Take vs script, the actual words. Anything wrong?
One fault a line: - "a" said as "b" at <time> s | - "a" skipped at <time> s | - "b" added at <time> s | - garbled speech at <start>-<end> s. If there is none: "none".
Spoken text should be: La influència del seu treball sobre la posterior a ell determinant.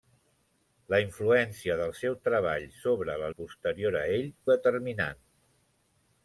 none